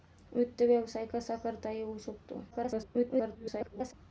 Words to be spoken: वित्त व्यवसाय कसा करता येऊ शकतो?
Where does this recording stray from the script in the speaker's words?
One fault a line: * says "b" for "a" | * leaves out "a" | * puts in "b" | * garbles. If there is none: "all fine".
* garbles